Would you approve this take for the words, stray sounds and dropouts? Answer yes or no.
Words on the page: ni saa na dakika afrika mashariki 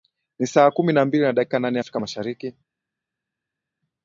no